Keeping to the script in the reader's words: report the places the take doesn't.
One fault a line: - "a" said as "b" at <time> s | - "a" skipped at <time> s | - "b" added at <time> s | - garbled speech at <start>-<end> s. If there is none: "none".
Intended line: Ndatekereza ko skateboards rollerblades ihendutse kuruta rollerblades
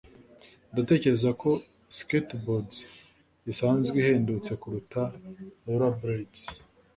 - "rollerblades" said as "isanzwe" at 3.5 s